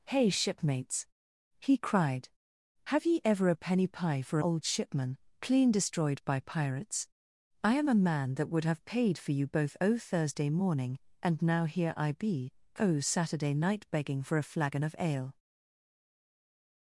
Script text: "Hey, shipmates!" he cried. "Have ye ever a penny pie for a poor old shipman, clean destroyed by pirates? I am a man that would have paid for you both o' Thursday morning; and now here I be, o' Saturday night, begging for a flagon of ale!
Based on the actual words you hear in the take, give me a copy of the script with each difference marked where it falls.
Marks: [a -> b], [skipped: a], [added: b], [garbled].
"Hey, shipmates!" he cried. "Have ye ever a penny pie for [skipped: a poor] old shipman, clean destroyed by pirates? I am a man that would have paid for you both o' Thursday morning; and now here I be, o' Saturday night, begging for a flagon of ale!